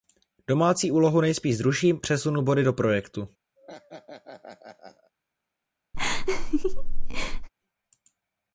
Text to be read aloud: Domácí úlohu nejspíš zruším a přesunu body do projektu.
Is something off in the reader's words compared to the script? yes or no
yes